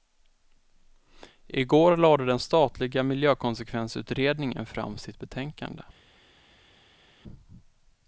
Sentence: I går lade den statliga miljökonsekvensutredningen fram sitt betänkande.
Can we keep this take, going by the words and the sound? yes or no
yes